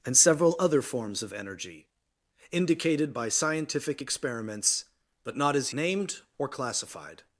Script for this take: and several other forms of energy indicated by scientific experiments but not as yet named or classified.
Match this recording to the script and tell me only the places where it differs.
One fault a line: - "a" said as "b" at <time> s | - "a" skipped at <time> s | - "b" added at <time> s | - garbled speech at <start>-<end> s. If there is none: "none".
- "yet" skipped at 5.7 s